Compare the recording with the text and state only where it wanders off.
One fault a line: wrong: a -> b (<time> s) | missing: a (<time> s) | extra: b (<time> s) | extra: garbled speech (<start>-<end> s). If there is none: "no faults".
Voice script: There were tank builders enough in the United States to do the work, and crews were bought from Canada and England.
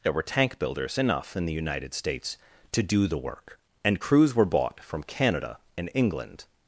no faults